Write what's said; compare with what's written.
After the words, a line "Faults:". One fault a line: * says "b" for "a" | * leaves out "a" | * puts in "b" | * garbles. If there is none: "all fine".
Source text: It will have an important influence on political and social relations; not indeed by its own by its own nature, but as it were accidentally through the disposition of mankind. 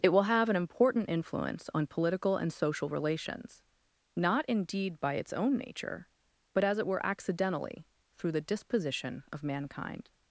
It will have an important influence on political and social relations; not indeed by its own nature, but as it were accidentally through the disposition of mankind.
Faults:
* leaves out "by its own"